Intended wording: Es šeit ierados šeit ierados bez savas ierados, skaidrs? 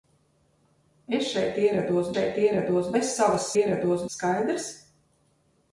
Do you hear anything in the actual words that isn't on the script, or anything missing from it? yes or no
no